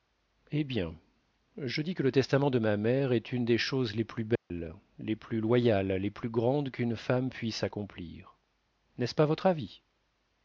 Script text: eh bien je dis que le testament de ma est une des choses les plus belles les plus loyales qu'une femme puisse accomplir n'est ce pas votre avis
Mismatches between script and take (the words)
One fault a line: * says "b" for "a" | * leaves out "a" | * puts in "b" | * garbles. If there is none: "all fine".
* puts in "mère"
* puts in "les plus grandes"